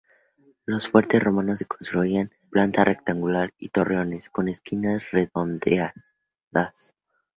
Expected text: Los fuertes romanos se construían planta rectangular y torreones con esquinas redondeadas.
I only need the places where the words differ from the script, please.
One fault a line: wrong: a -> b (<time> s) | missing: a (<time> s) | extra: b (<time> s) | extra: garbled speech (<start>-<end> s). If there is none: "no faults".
no faults